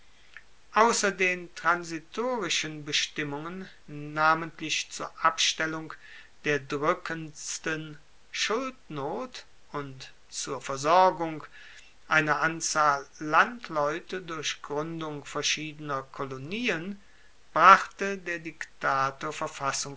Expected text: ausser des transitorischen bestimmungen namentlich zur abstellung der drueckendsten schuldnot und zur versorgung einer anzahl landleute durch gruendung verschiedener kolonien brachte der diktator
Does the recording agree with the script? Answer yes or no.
no